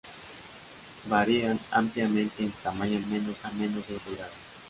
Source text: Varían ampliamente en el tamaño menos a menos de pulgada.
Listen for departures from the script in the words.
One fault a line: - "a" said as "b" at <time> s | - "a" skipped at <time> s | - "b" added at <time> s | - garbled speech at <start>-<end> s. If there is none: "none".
none